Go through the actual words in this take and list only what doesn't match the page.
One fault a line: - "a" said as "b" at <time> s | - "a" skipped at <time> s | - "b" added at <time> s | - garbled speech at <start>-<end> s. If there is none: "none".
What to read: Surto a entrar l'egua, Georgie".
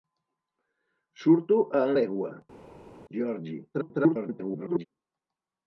- "entrar" skipped at 1.8 s
- garbled speech at 3.7-4.9 s